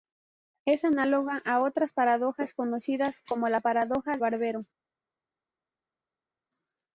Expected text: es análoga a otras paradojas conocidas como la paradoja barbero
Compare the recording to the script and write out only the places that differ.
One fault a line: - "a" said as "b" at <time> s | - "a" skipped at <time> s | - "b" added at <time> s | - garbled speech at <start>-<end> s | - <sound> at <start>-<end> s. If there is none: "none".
none